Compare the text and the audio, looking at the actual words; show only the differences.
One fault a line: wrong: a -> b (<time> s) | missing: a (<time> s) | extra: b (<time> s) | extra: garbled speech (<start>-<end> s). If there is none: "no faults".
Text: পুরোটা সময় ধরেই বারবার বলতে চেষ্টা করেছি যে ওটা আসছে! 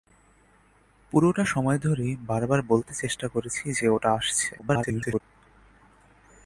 extra: garbled speech (4.6-5.2 s)